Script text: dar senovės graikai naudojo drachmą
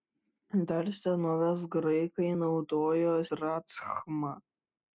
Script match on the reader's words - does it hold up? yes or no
yes